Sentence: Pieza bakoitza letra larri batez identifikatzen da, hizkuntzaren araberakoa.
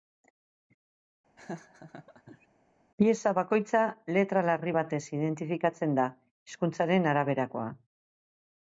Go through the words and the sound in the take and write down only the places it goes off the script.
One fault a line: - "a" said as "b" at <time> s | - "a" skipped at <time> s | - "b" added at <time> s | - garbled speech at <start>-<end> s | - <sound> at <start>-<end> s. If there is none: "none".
- laugh at 1.4-2.5 s